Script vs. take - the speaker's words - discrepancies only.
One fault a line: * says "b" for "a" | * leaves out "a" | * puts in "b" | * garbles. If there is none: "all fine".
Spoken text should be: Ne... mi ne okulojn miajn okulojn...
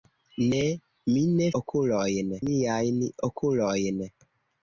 all fine